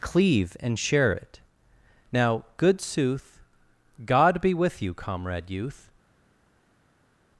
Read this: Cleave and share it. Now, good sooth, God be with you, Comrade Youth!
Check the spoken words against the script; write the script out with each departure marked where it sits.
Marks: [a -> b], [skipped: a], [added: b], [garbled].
Cleave and share it. Now, good sooth, God be with you, Comrade Youth!